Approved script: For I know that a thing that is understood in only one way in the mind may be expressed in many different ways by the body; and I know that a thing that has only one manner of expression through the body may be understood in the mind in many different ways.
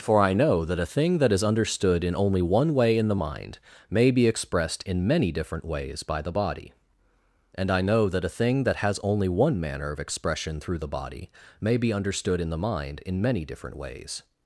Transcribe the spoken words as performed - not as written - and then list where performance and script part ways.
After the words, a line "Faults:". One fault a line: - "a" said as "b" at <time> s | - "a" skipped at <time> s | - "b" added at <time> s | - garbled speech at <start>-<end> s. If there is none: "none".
For I know that a thing that is understood in only one way in the mind may be expressed in many different ways by the body; and I know that a thing that has only one manner of expression through the body may be understood in the mind in many different ways.
Faults:
none